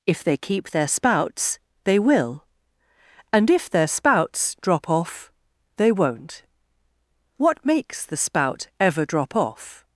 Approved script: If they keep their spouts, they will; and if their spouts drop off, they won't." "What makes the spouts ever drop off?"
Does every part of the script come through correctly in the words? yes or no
no